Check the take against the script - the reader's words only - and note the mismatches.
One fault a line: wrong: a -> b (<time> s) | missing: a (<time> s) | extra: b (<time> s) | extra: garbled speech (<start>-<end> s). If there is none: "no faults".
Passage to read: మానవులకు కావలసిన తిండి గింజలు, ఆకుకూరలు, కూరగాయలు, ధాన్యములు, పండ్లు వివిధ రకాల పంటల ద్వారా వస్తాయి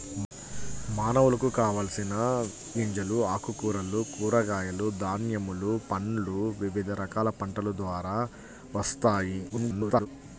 missing: తిండి (2.1 s)
extra: garbled speech (9.5-10.1 s)